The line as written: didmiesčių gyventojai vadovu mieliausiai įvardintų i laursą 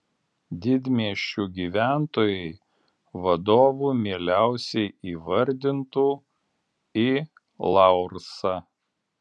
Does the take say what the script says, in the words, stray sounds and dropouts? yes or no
yes